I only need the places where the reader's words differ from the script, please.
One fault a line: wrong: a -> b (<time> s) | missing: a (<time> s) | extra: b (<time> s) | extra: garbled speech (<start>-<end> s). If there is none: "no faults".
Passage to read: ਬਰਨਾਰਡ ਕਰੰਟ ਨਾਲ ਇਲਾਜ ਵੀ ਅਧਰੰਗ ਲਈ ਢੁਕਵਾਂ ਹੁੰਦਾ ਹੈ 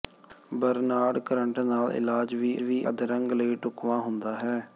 extra: ਵੀ (2.6 s)